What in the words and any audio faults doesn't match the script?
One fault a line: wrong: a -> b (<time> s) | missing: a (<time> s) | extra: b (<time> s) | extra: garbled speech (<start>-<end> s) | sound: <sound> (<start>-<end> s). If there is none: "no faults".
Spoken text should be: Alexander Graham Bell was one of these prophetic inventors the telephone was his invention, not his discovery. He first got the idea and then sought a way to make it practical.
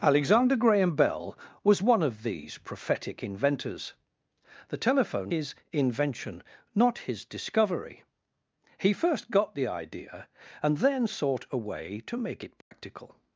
missing: was (5.3 s)
sound: dropout (12.6-12.7 s)